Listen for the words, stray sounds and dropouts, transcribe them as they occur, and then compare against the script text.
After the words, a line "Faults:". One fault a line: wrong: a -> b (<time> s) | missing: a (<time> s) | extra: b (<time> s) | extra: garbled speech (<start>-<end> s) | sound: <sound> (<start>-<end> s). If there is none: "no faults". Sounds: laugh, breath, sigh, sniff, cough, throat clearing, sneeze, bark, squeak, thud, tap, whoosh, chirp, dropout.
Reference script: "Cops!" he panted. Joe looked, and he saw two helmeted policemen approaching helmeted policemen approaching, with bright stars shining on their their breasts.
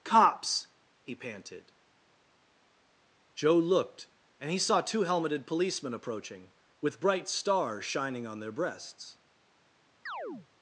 "Cops!" he panted. Joe looked, and he saw two helmeted policemen approaching, with bright stars shining on their breasts.
Faults:
missing: helmeted policemen approaching (6.5 s)
missing: their (8.5 s)
sound: chirp (10.1-10.5 s)